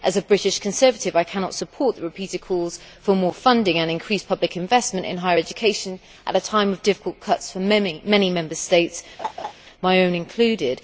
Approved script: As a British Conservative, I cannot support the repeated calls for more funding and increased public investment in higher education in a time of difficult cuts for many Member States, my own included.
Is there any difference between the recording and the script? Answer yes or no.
yes